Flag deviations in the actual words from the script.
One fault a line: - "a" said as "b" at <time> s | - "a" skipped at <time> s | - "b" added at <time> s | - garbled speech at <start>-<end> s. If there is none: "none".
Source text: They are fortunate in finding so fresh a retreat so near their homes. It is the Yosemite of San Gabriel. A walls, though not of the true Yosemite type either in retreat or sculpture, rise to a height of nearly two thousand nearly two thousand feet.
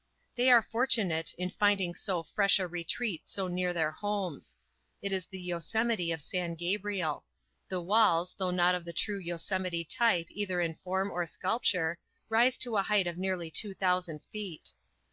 - "A" said as "The" at 7.7 s
- "retreat" said as "form" at 10.8 s
- "nearly two thousand" skipped at 14.2 s